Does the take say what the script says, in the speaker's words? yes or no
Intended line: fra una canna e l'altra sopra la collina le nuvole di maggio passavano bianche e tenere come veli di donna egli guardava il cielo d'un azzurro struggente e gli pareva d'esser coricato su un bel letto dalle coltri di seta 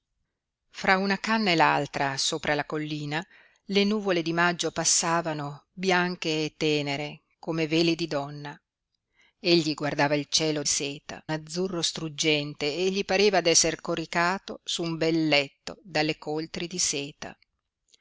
no